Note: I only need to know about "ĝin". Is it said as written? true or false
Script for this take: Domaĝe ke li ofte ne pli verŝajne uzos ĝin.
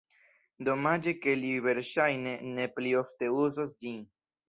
true